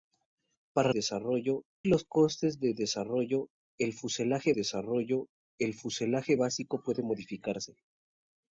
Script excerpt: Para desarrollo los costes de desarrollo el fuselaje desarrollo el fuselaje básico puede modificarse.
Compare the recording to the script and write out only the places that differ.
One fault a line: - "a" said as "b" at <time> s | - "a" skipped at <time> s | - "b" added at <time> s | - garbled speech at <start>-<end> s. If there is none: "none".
none